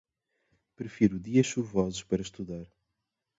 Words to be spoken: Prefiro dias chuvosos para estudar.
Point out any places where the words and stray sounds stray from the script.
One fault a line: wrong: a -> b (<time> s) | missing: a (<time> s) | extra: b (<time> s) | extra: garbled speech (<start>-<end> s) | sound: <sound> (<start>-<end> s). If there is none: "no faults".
no faults